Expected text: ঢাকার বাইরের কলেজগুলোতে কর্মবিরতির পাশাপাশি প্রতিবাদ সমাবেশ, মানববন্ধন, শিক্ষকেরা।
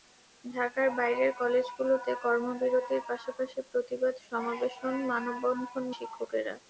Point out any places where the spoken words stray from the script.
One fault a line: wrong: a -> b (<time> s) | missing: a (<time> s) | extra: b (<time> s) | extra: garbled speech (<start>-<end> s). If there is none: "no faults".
no faults